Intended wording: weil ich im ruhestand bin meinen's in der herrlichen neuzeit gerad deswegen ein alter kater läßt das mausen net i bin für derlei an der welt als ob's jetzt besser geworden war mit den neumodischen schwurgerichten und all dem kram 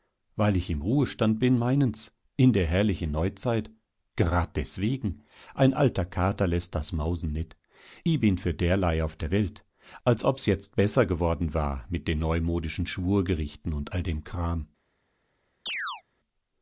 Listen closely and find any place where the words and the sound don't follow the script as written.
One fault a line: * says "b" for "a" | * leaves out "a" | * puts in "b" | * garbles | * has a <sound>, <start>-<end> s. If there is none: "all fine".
* says "auf" for "an"
* has a chirp, 15.7-16.0 s